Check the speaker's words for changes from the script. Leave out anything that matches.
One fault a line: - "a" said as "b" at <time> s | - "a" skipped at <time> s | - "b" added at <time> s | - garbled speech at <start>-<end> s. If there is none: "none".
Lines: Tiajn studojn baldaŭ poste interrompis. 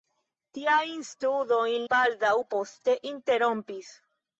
none